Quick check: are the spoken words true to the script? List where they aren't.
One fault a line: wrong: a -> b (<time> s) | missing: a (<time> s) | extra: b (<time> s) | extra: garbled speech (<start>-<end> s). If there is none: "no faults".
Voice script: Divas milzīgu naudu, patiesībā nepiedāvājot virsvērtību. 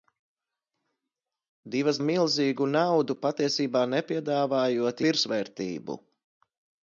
no faults